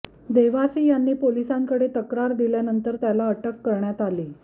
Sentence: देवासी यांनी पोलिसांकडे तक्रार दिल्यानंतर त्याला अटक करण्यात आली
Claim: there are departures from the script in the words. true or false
false